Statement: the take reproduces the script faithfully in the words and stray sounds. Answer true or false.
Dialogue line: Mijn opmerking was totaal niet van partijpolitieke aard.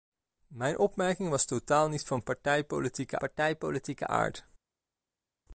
false